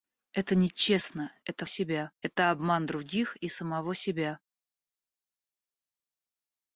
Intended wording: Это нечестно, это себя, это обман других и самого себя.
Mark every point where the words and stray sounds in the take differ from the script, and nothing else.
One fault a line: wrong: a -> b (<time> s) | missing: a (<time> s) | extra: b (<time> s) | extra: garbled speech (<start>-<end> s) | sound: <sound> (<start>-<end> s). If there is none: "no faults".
no faults